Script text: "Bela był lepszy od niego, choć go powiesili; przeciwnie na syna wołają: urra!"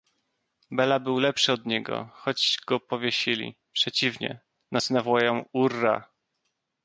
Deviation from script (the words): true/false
false